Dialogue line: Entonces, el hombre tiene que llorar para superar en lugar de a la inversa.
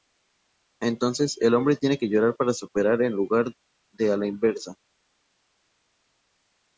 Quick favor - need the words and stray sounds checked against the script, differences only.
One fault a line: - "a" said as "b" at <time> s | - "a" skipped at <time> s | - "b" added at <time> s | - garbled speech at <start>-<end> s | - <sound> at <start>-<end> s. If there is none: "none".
none